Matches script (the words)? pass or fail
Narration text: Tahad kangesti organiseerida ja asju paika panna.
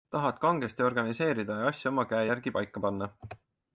fail